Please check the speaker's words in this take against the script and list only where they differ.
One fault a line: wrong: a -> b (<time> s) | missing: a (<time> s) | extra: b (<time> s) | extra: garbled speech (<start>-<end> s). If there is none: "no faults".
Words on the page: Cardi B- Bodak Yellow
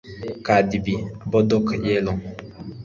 no faults